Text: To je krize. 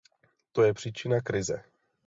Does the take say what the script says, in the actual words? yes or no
no